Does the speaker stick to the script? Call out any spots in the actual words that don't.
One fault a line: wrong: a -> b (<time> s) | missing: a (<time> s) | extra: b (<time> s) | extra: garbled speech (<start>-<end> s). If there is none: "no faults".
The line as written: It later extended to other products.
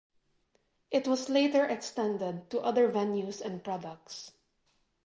extra: was (1.1 s)
extra: venues and (2.9 s)